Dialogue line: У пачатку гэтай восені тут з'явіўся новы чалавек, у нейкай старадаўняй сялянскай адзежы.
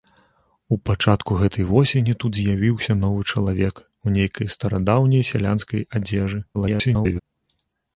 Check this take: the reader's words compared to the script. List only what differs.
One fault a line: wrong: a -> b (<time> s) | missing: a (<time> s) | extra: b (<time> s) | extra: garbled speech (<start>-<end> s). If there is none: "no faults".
extra: garbled speech (6.5-7.2 s)